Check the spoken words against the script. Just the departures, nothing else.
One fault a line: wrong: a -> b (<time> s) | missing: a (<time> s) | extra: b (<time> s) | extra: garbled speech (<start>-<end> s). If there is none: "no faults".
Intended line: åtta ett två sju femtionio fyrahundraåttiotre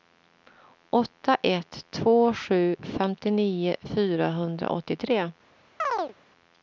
no faults